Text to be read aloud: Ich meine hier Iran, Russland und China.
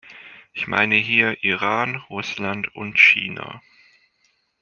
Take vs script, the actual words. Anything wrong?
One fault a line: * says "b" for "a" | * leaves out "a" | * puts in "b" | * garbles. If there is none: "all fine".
all fine